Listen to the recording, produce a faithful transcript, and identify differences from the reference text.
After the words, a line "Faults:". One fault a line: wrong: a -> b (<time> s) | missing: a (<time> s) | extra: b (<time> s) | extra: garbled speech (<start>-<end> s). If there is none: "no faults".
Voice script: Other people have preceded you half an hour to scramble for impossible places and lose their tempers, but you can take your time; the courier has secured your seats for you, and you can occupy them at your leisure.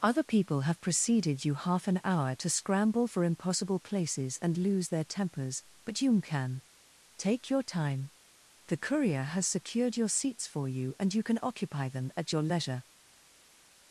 Other people have preceded you half an hour to scramble for impossible places and lose their tempers, but you can take your time; the courier has secured your seats for you, and you can occupy them at your leisure.
Faults:
no faults